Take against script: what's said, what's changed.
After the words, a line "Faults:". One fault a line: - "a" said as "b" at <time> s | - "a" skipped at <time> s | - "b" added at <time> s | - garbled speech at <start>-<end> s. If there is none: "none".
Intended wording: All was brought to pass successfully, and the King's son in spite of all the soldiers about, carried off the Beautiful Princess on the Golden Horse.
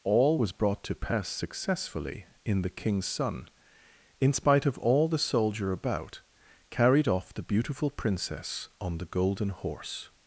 All was brought to pass successfully, in the King's son in spite of all the soldier about, carried off the Beautiful Princess on the Golden Horse.
Faults:
- "and" said as "in" at 2.4 s
- "soldiers" said as "soldier" at 5.2 s